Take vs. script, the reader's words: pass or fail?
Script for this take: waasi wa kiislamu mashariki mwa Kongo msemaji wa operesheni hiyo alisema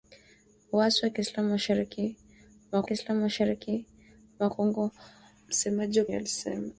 fail